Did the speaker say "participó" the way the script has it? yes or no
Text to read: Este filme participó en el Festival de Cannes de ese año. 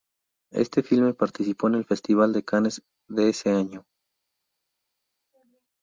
yes